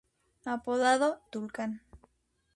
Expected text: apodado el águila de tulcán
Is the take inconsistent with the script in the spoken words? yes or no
yes